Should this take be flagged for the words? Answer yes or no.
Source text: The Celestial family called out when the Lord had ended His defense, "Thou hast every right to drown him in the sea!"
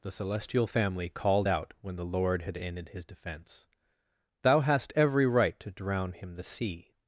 yes